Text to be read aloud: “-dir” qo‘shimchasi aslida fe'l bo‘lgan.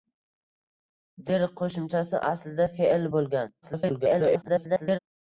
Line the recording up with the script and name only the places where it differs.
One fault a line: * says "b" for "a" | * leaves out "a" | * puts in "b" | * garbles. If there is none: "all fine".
* garbles